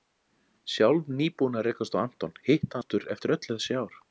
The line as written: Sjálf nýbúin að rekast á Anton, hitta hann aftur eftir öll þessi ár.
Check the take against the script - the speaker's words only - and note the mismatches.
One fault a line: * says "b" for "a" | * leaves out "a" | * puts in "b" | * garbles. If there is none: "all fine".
* leaves out "hann"